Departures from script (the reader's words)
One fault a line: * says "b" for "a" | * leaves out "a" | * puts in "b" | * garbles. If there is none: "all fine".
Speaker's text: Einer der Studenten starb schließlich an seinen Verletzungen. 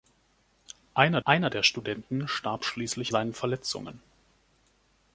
* puts in "einer"
* leaves out "an"